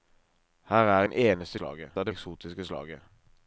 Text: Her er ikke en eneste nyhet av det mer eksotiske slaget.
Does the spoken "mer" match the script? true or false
false